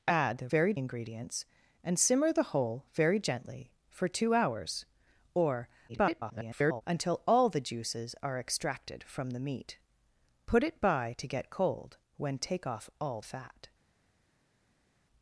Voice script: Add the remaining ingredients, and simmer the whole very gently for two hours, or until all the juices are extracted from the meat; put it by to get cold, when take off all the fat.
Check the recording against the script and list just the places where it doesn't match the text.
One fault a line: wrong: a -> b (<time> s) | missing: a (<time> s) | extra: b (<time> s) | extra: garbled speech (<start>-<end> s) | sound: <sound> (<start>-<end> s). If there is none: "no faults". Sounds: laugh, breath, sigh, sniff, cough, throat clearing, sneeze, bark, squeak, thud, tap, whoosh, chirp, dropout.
wrong: remaining -> very (0.5 s)
extra: garbled speech (5.9-6.8 s)
missing: the (13.2 s)